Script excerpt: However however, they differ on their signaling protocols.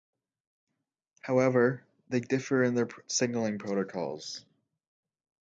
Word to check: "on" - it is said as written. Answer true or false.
false